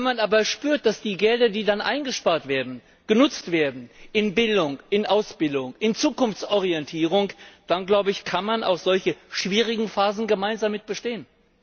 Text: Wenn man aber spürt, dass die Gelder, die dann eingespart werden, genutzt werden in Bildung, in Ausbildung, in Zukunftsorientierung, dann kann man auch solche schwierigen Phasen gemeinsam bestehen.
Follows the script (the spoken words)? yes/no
yes